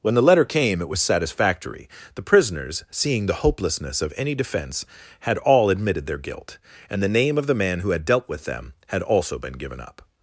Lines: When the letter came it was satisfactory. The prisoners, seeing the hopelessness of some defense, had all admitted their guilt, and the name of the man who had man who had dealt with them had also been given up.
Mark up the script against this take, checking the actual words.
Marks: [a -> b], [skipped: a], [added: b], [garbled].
When the letter came it was satisfactory. The prisoners, seeing the hopelessness of [some -> any] defense, had all admitted their guilt, and the name of the man who had [skipped: man who had] dealt with them had also been given up.